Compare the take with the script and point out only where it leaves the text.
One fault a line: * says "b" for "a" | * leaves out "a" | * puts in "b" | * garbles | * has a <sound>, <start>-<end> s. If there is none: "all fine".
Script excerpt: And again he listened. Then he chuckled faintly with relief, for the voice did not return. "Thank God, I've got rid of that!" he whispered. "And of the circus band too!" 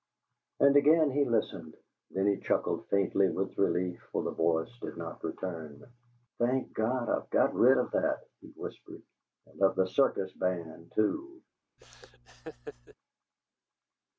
* has a laugh, 11.8-12.9 s